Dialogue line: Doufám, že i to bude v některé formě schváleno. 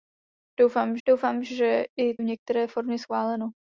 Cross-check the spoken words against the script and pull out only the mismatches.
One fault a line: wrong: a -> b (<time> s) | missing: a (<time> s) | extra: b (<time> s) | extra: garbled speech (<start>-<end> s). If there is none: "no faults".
extra: doufám (1.1 s)
missing: to bude (2.2 s)